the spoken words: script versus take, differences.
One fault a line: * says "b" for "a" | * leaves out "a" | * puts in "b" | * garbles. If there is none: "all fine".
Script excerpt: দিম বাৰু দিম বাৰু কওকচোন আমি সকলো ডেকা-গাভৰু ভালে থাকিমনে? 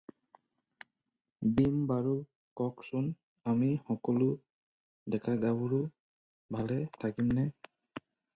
* leaves out "দিম বাৰু"